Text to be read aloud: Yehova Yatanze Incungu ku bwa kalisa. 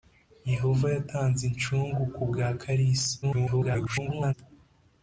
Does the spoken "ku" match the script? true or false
true